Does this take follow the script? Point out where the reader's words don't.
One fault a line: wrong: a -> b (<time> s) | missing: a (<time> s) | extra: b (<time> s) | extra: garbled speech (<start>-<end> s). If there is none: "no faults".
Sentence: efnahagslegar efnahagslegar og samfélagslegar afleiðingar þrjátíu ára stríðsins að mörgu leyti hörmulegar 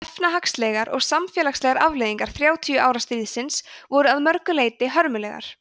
missing: efnahagslegar (0.9 s)
extra: voru (3.9 s)